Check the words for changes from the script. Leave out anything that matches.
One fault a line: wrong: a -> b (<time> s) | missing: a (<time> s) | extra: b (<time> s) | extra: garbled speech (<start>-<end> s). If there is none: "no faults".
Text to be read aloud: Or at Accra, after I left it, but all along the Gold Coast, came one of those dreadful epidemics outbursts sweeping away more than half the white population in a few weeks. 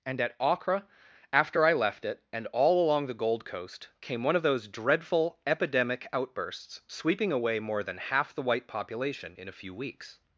wrong: Or -> And (0.1 s)
wrong: but -> and (2.3 s)
wrong: epidemics -> epidemic (5.5 s)